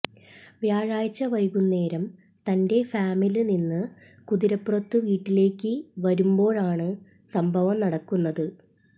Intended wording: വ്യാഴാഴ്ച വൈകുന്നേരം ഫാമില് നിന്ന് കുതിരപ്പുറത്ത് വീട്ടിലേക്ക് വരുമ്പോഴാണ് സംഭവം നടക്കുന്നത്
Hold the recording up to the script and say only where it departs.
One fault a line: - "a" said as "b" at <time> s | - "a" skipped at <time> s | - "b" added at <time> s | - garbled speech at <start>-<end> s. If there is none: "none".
- "തന്റെ" added at 2.5 s